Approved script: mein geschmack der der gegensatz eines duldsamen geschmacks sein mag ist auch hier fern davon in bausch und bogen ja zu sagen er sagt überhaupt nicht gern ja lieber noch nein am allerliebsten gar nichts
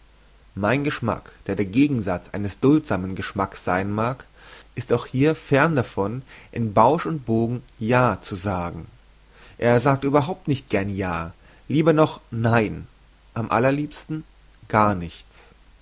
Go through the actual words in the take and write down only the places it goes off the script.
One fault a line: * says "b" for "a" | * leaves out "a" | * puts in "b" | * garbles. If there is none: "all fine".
all fine